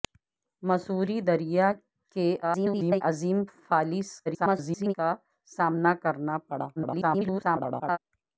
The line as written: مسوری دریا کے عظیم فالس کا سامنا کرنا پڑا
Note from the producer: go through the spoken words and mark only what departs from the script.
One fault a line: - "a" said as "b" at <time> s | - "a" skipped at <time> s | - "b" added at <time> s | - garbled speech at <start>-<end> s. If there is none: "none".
- garbled speech at 2.4-3.0 s
- garbled speech at 4.3-4.9 s
- garbled speech at 6.8-8.0 s